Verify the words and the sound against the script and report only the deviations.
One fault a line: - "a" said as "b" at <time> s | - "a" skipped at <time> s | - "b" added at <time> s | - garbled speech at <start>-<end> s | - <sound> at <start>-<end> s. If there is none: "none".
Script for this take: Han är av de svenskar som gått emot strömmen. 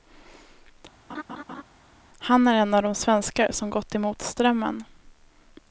- laugh at 1.1-1.6 s
- "en" added at 2.5 s